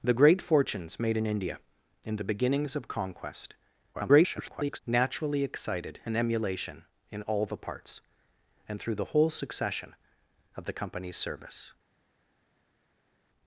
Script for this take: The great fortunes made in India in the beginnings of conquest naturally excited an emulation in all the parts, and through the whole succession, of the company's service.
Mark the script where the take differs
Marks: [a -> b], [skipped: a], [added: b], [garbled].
The great fortunes made in India in the beginnings of conquest [garbled] naturally excited an emulation in all the parts, and through the whole succession, of the company's service.